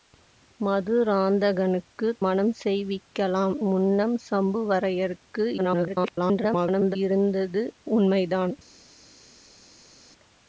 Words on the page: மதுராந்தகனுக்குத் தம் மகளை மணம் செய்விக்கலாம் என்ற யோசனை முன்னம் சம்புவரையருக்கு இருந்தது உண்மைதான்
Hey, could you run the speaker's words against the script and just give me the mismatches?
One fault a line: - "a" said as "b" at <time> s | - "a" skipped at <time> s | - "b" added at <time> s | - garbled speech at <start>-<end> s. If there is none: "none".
- "தம் மகளை" skipped at 2.2 s
- "என்ற யோசனை" skipped at 3.6 s
- garbled speech at 5.6-7.0 s